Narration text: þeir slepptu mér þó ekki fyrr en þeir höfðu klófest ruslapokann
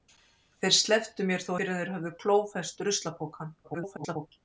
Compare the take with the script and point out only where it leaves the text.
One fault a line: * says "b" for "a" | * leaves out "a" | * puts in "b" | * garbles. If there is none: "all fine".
* leaves out "ekki"
* garbles